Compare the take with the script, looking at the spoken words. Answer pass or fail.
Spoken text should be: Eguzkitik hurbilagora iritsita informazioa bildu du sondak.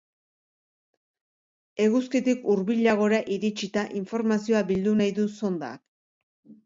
fail